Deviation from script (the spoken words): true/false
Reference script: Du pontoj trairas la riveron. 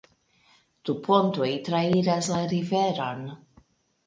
false